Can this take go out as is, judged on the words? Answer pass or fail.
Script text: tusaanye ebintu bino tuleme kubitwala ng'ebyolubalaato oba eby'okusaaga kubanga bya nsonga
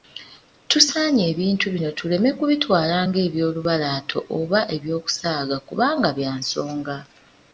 pass